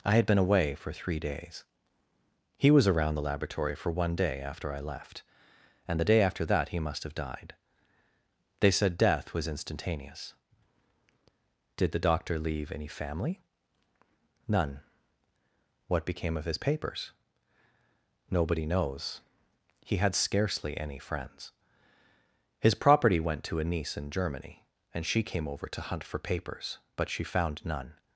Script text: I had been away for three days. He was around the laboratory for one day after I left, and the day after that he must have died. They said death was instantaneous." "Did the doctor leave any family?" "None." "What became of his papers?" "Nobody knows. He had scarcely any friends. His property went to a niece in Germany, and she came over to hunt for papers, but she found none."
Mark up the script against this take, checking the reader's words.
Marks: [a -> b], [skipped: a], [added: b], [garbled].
I had been away for three days. He was around the laboratory for one day after I left, and the day after that he must have died. They said death was instantaneous." "Did the doctor leave any family?" "None." "What became of his papers?" "Nobody knows. He had scarcely any friends. His property went to a niece in Germany, and she came over to hunt for papers, but she found none."